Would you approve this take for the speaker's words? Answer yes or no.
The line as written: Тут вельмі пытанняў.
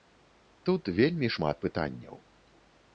no